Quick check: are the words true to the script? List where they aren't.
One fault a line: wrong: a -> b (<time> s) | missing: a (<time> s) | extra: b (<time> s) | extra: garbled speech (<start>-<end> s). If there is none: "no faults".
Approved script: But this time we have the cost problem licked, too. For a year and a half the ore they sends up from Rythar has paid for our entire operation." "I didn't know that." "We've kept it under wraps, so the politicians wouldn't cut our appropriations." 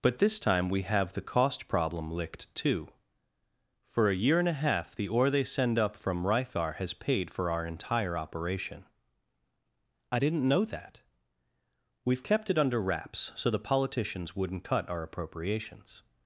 wrong: sends -> send (5.4 s)